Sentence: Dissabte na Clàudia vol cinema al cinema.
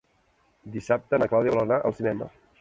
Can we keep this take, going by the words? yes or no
no